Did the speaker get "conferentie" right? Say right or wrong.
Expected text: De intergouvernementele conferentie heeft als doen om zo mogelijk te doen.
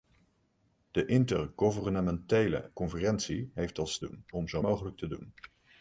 right